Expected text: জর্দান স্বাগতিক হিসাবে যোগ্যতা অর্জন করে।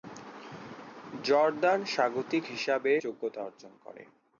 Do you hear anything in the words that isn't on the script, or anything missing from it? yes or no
no